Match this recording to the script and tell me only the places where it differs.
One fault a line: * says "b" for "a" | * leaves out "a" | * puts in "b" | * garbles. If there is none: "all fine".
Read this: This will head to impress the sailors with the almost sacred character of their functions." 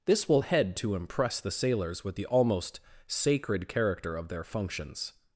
all fine